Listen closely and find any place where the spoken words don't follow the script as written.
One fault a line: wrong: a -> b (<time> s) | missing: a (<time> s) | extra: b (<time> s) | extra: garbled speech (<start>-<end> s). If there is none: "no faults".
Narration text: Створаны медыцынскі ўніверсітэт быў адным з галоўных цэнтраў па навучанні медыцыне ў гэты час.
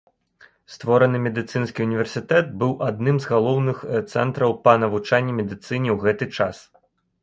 no faults